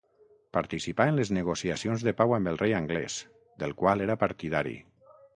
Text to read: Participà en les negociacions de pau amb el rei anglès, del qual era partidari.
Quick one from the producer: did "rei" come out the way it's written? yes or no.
yes